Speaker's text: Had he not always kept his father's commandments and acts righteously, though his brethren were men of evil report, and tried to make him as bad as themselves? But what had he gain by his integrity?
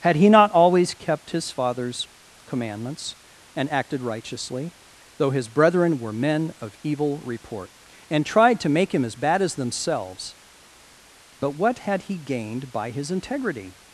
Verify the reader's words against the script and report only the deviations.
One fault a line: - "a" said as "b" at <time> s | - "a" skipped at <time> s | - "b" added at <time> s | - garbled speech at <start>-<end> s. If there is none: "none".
- "acts" said as "acted" at 3.7 s
- "gain" said as "gained" at 12.2 s